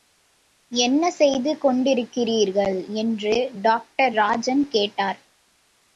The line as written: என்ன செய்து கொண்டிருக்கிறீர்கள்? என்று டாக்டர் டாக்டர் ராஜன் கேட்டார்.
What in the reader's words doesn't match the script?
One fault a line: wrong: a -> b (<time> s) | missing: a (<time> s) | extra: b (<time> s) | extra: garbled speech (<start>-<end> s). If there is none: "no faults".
missing: டாக்டர் (4.1 s)